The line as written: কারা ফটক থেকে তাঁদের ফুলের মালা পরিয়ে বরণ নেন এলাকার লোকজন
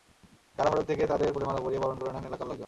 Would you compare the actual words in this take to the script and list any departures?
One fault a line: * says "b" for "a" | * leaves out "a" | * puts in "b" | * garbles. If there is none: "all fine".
* puts in "করে"